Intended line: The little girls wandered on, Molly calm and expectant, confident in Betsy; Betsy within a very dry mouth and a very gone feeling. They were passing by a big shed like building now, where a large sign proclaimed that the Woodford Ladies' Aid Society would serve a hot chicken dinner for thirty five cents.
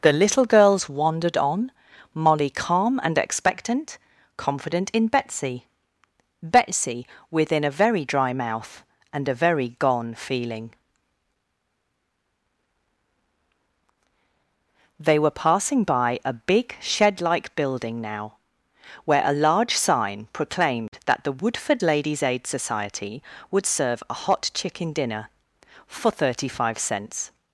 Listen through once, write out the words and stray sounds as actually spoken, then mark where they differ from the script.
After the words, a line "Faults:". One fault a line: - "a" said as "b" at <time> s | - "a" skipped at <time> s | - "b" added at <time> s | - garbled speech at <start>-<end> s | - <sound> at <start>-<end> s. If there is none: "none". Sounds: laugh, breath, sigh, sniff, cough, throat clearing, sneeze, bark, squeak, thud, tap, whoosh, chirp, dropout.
The little girls wandered on, Molly calm and expectant, confident in Betsy; Betsy within a very dry mouth and a very gone feeling. They were passing by a big shed like building now, where a large sign proclaimed that the Woodford Ladies' Aid Society would serve a hot chicken dinner for thirty five cents.
Faults:
none